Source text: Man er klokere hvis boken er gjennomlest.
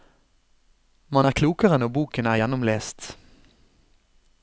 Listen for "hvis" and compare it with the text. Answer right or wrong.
wrong